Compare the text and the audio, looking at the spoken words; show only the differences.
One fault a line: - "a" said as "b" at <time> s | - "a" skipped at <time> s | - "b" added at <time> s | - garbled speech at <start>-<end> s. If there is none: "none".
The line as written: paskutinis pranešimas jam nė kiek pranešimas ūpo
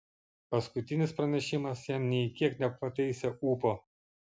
- "pranešimas" said as "nepataisė" at 2.7 s